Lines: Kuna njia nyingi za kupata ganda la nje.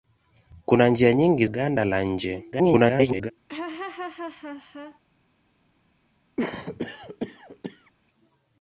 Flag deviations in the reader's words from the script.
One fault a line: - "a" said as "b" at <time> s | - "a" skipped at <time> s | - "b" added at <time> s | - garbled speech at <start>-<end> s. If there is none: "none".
- "za kupata" skipped at 1.4 s
- garbled speech at 2.5-3.3 s